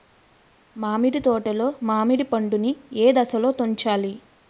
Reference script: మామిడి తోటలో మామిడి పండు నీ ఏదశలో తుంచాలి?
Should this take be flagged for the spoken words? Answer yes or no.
no